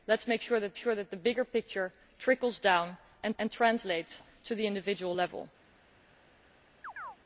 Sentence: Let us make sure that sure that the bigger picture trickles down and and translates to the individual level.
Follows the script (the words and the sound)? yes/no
no